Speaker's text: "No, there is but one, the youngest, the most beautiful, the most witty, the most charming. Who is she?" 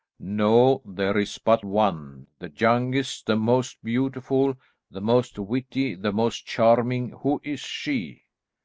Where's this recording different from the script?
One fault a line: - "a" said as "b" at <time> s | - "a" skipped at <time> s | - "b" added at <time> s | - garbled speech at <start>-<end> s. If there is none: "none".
none